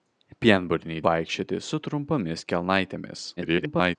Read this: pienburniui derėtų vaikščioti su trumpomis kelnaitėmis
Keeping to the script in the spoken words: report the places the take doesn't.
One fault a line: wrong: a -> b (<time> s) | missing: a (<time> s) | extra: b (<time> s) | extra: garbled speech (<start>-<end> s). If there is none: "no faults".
missing: derėtų (1.0 s)
extra: garbled speech (3.4-4.0 s)